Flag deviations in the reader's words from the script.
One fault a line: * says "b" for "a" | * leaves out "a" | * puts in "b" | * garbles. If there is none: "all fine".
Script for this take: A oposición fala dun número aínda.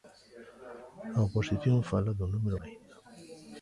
all fine